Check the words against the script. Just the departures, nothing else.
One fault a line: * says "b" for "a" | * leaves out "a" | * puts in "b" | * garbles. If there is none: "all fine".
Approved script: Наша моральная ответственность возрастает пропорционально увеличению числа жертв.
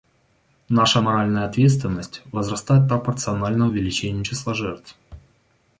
all fine